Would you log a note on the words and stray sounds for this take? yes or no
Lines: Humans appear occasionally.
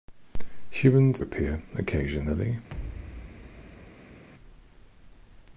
yes